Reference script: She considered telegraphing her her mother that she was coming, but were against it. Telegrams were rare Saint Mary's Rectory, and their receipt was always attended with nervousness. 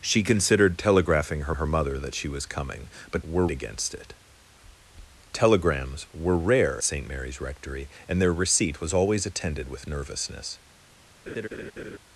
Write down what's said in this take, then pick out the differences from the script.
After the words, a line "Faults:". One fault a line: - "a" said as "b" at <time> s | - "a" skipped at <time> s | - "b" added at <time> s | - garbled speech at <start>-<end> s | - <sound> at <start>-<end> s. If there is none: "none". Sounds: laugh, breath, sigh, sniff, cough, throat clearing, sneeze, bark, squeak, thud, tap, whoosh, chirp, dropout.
She considered telegraphing her her mother that she was coming, but were against it. Telegrams were rare Saint Mary's Rectory, and their receipt was always attended with nervousness.
Faults:
- laugh at 11.3-12.0 s